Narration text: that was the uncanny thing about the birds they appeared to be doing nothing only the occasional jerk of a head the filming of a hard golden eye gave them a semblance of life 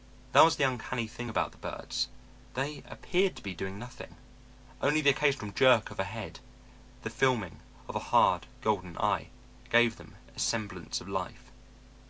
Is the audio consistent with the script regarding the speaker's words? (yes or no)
yes